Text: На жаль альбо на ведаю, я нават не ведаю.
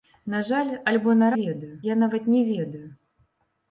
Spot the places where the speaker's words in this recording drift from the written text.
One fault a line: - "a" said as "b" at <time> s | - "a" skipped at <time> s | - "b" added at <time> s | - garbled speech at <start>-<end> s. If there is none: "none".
none